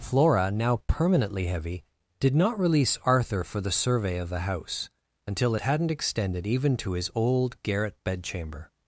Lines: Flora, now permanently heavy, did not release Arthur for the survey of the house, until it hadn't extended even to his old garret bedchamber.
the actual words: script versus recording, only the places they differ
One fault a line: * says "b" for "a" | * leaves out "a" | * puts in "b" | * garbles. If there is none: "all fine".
all fine